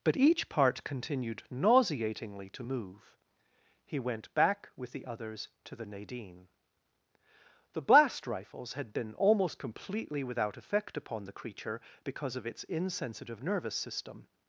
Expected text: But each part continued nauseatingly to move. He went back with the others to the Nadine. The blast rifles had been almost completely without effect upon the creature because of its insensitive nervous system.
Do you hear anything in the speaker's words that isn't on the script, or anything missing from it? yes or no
no